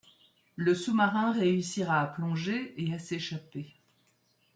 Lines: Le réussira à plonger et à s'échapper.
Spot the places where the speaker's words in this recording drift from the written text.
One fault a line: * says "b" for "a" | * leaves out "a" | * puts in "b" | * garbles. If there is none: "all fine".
* puts in "sous marin"